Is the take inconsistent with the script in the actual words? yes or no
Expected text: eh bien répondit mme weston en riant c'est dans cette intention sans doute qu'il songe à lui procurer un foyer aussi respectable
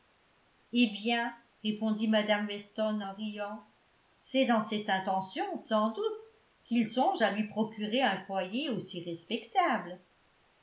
no